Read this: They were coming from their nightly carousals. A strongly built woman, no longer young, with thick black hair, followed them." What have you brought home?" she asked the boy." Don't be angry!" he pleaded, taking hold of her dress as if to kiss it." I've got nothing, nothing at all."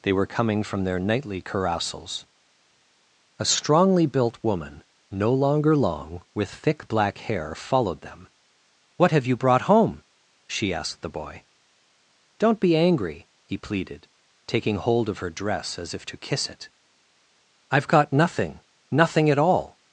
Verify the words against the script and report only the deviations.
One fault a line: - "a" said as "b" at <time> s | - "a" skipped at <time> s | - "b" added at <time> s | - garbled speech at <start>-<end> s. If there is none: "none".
- "young" said as "long" at 5.8 s